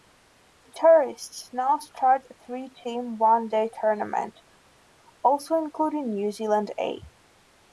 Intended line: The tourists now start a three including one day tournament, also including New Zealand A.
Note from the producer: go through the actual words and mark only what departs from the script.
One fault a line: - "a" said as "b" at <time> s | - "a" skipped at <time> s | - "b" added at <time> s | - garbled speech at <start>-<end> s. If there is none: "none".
- "including" said as "team" at 2.9 s